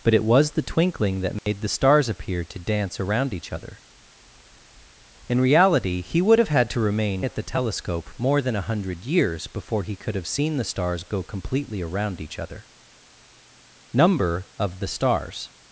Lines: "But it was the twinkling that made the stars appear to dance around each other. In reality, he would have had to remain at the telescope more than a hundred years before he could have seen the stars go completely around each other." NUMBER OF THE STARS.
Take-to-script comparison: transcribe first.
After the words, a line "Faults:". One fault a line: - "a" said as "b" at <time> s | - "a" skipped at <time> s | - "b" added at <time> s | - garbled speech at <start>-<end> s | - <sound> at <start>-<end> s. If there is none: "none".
"But it was the twinkling that made the stars appear to dance around each other. In reality, he would have had to remain at the telescope more than a hundred years before he could have seen the stars go completely around each other." NUMBER OF THE STARS.
Faults:
- dropout at 1.4-1.5 s